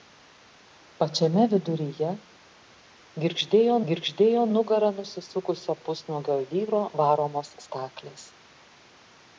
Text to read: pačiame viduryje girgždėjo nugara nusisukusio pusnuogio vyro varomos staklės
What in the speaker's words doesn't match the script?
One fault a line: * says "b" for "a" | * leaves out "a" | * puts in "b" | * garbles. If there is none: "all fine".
* puts in "girgždėjo"